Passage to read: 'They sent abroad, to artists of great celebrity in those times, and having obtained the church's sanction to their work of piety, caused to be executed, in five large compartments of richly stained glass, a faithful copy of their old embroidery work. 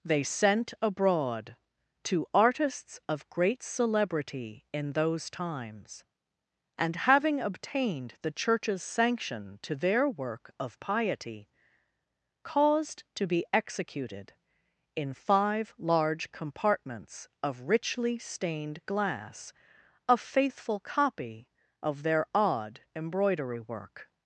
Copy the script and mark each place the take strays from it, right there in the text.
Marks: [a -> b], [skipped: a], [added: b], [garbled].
'They sent abroad, to artists of great celebrity in those times, and having obtained the church's sanction to their work of piety, caused to be executed, in five large compartments of richly stained glass, a faithful copy of their [old -> odd] embroidery work.